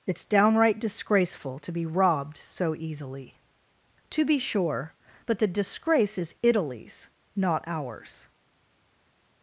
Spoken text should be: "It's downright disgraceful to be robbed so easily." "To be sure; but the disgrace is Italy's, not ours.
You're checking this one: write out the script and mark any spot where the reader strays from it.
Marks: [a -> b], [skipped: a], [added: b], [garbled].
"It's downright disgraceful to be robbed so easily." "To be sure; but the disgrace is Italy's, not ours.